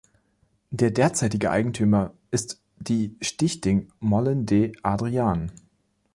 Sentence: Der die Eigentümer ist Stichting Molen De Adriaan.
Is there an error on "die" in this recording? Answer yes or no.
yes